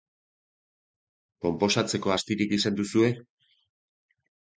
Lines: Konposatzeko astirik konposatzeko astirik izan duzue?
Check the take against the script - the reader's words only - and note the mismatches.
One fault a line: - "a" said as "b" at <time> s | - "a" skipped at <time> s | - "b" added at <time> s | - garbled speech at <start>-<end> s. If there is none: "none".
- "konposatzeko astirik" skipped at 2.5 s